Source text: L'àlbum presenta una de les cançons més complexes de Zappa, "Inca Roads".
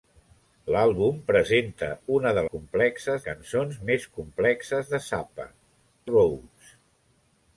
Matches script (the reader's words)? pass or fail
fail